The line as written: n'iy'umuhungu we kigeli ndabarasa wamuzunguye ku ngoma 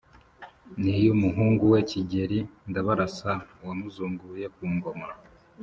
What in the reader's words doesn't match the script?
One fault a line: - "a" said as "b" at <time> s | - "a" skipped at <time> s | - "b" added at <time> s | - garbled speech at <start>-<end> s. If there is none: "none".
none